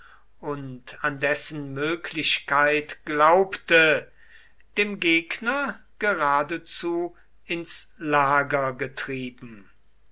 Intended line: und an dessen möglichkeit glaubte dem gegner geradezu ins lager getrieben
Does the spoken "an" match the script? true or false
true